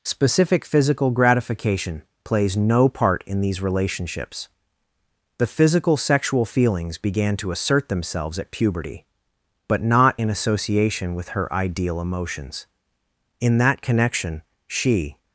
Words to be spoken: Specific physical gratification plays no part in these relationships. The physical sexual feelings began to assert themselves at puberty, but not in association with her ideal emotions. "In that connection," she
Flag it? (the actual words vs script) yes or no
no